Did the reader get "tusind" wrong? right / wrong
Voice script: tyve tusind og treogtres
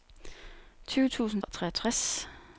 right